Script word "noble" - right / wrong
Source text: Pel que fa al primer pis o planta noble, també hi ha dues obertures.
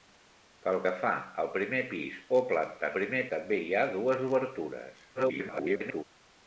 wrong